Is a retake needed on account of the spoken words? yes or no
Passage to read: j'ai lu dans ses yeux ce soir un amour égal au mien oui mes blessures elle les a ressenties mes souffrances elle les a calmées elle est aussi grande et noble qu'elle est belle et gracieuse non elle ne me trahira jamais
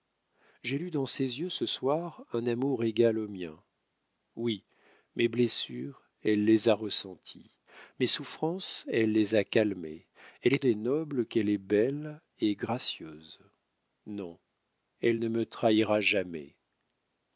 yes